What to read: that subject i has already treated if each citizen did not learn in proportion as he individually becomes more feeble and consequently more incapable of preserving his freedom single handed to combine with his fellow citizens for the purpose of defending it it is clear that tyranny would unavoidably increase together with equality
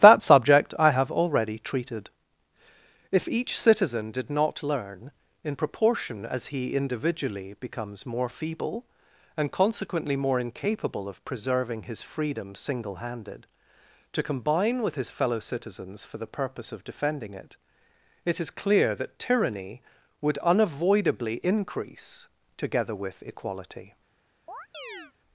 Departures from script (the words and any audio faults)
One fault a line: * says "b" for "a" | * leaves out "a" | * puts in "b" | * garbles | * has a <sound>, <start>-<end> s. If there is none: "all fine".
* says "have" for "has"
* has a chirp, 24.5-25.1 s